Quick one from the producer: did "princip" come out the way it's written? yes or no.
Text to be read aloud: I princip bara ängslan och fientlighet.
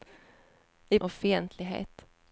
no